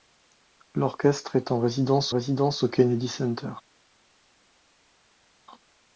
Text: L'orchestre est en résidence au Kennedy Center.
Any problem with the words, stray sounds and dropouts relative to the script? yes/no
yes